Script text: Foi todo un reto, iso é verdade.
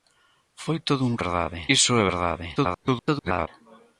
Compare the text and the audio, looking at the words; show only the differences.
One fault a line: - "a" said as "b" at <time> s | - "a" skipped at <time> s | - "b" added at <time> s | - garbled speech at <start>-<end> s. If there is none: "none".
- "reto" said as "verdade" at 1.2 s
- garbled speech at 2.6-3.5 s